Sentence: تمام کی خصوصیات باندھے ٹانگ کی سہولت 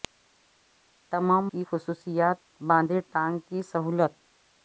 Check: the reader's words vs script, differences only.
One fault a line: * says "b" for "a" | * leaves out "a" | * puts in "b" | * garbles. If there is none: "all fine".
all fine